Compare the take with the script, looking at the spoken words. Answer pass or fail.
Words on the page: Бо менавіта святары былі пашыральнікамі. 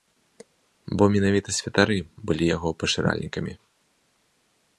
fail